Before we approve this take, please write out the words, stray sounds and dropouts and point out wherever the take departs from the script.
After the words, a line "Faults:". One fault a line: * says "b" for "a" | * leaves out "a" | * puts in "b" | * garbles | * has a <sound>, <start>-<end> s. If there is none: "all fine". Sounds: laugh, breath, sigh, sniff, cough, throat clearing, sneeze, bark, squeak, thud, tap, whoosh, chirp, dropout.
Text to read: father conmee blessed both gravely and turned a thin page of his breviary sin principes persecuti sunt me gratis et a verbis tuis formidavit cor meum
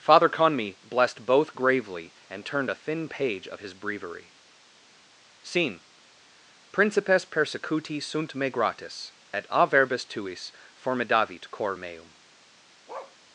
father conmee blessed both gravely and turned a thin page of his breviary scene principes persecuti sunt me gratis et a verbis tuis formidavit cor meum
Faults:
* says "scene" for "sin"
* has a bark, 12.9-13.2 s